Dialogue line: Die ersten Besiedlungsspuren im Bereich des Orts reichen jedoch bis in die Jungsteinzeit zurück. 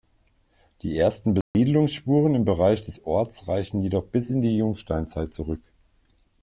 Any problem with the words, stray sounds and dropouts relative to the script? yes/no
yes